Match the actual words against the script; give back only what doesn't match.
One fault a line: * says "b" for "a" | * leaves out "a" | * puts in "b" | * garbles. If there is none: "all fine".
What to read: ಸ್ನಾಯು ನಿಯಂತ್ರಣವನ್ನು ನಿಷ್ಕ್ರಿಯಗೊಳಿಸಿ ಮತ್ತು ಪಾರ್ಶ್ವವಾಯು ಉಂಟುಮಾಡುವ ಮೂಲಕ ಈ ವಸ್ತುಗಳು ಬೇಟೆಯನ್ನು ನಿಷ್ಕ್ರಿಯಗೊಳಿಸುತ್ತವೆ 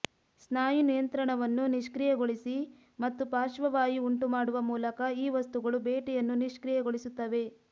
all fine